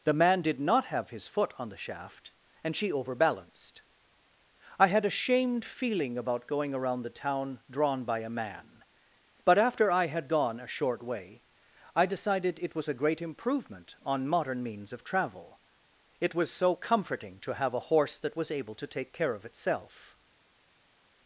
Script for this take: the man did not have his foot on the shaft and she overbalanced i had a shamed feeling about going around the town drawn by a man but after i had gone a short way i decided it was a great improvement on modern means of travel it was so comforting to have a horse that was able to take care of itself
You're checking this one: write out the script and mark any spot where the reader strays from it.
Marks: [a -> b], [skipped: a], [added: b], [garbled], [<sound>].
the man did not have his foot on the shaft and she overbalanced i had a shamed feeling about going around the town drawn by a man but after i had gone a short way i decided it was a great improvement on modern means of travel it was so comforting to have a horse that was able to take care of itself